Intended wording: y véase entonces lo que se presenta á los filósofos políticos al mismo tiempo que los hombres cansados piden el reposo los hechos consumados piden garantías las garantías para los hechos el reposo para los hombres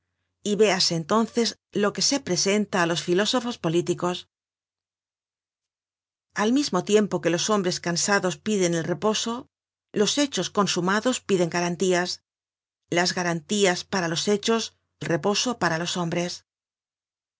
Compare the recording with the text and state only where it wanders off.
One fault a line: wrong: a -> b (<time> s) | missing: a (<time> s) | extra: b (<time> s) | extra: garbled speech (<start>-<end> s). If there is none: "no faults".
no faults